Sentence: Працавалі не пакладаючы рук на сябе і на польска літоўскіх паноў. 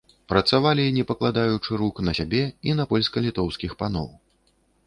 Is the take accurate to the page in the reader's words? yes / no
yes